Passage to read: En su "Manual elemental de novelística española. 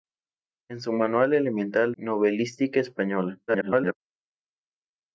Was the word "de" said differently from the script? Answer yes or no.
yes